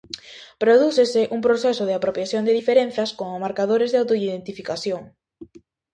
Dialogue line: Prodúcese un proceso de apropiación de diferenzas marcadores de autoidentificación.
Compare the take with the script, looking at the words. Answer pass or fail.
fail